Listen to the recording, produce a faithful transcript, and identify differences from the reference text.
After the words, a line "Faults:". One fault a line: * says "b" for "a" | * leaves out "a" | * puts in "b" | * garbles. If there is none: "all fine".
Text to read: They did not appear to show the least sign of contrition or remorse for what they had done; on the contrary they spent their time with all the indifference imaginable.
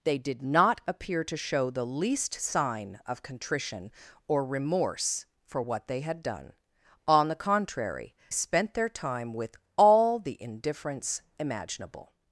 They did not appear to show the least sign of contrition or remorse for what they had done; on the contrary spent their time with all the indifference imaginable.
Faults:
* leaves out "they"